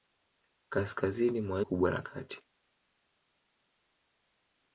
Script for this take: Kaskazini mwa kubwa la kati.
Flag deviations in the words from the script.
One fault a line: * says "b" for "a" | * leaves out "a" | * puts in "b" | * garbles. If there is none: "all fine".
all fine